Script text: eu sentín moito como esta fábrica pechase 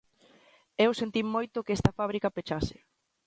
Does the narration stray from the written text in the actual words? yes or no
yes